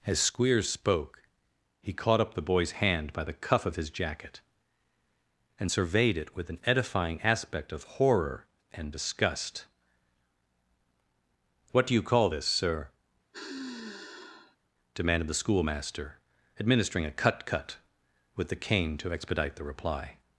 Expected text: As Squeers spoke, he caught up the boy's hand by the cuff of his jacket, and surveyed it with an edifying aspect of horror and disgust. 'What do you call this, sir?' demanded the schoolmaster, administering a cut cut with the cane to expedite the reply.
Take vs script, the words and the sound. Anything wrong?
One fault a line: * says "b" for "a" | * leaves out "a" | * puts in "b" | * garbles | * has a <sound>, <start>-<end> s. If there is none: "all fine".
* has a sigh, 13.3-14.6 s